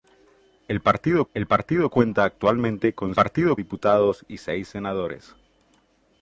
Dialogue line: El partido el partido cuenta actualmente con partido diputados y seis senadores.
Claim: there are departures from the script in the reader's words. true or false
false